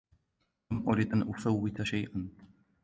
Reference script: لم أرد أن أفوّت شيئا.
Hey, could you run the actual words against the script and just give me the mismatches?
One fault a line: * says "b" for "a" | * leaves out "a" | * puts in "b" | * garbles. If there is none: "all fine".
all fine